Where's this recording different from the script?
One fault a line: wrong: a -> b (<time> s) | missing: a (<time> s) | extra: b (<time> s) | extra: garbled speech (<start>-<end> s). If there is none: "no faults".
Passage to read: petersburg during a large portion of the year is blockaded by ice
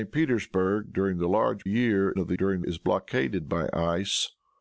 wrong: portion -> year (1.7 s)
wrong: year -> during (2.4 s)